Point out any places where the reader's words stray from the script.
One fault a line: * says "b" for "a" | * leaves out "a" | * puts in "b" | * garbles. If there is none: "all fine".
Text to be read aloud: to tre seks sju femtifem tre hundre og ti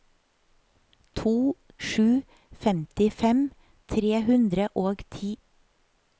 * leaves out "tre seks"